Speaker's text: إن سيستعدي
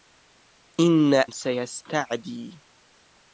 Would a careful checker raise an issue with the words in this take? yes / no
no